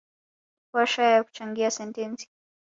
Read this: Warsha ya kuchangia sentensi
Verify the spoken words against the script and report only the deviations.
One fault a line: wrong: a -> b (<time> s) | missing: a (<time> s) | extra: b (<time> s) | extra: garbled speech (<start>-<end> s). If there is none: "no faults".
no faults